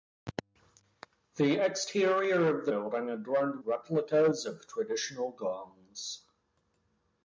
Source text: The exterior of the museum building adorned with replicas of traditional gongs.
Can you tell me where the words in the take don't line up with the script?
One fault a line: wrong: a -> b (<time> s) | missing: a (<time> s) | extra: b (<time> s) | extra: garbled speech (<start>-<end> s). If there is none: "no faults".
missing: museum (2.7 s)
missing: with (3.6 s)